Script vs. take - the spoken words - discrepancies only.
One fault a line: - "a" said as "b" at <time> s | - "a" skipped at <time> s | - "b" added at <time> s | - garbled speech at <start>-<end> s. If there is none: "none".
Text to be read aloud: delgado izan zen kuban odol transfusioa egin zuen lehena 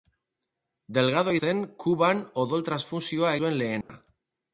- "izan" skipped at 1.4 s
- "egin" skipped at 3.3 s